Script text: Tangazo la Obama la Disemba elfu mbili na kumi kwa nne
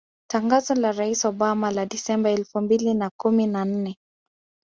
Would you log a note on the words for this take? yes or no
yes